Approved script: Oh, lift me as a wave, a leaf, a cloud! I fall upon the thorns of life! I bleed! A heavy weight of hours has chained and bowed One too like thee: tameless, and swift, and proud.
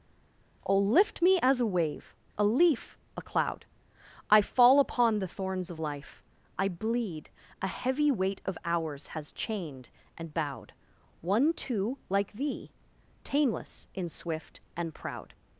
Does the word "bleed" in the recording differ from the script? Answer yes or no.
no